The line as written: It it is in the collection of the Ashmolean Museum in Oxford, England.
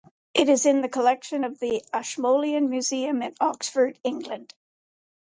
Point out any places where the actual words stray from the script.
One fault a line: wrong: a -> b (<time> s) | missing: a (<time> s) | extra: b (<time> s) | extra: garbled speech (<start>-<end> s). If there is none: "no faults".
missing: it (0.5 s)